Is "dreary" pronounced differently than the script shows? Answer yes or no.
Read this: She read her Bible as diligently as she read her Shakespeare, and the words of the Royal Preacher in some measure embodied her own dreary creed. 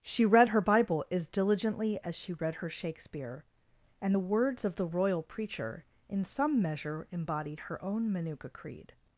yes